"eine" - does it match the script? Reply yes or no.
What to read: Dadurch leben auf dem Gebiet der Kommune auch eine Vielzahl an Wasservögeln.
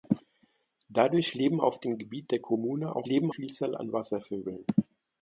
no